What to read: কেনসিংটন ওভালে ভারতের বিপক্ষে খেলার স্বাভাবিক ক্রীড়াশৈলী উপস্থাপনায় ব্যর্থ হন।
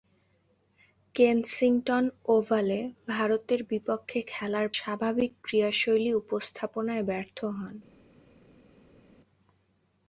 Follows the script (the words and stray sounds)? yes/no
yes